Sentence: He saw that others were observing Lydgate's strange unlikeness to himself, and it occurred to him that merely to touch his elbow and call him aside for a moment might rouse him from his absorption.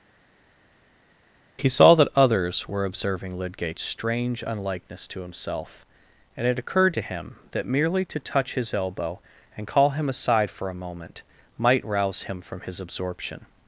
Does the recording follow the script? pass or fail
pass